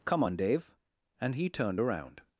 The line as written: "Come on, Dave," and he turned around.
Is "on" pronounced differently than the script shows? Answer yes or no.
no